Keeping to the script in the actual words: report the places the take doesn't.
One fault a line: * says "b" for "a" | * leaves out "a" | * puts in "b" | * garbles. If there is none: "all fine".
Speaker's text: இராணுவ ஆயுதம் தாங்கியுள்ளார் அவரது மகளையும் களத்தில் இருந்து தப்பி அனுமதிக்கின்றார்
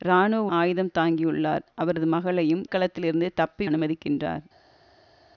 all fine